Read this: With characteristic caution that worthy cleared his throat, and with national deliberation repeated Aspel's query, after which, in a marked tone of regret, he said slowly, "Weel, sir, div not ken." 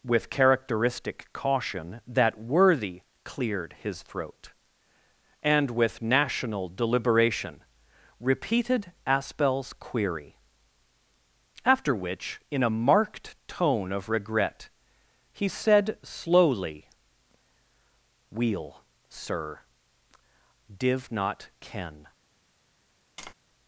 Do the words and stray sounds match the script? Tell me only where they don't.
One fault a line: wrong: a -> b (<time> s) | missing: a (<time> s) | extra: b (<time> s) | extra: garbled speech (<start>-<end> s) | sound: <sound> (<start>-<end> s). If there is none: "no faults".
sound: tap (23.2-23.3 s)